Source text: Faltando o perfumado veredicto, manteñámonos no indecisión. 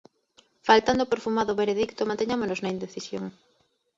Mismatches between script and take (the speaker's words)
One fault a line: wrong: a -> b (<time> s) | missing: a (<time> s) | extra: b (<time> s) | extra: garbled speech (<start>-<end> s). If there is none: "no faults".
wrong: no -> na (2.6 s)